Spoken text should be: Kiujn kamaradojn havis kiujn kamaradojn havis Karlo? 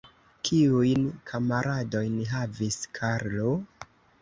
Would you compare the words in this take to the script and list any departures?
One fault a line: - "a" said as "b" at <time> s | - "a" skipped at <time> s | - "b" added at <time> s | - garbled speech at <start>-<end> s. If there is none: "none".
- "kiujn kamaradojn havis" skipped at 2.8 s